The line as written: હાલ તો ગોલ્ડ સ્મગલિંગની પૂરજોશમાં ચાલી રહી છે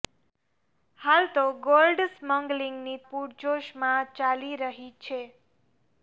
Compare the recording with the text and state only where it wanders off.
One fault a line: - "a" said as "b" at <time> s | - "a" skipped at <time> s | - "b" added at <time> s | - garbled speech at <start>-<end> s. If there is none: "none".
none